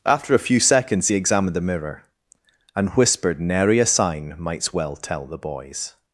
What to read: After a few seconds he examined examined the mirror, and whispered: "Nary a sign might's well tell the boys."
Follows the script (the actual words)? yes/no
no